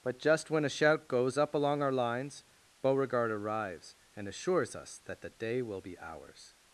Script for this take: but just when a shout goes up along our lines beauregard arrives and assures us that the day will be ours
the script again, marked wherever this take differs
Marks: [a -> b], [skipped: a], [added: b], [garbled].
but just when a shout goes up along our lines beauregard arrives and assures us that the day will be ours